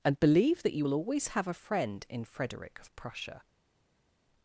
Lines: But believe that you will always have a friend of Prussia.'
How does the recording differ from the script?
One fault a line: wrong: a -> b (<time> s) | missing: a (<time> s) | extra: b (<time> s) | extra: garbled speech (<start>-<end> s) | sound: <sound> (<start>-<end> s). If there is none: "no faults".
wrong: But -> And (0.0 s)
extra: in Frederick (2.1 s)